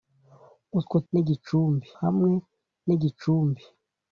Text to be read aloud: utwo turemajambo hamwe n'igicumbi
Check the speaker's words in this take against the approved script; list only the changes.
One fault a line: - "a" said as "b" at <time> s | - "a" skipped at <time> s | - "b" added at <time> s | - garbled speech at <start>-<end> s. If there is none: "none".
- "turemajambo" said as "n'igicumbi" at 1.1 s